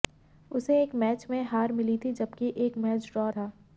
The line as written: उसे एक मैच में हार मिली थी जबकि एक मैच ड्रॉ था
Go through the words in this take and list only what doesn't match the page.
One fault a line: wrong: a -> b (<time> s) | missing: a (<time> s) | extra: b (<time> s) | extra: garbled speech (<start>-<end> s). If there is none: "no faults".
no faults